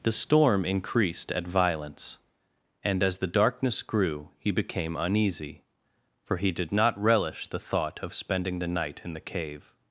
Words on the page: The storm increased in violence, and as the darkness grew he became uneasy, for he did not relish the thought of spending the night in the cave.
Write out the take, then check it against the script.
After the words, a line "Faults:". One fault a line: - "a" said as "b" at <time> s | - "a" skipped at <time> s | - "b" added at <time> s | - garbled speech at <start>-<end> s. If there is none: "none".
The storm increased at violence, and as the darkness grew he became uneasy, for he did not relish the thought of spending the night in the cave.
Faults:
- "in" said as "at" at 1.3 s